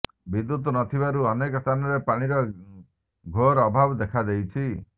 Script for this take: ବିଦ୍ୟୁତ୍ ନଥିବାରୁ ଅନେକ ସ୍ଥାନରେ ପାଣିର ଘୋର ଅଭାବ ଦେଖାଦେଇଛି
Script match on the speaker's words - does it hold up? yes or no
yes